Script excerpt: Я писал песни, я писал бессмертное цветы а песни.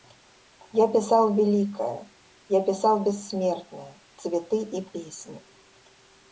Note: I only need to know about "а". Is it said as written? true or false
false